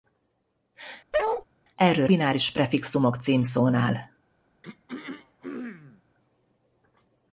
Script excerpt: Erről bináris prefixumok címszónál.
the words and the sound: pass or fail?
fail